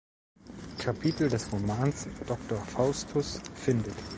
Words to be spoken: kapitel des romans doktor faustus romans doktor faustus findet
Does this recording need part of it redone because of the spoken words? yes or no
yes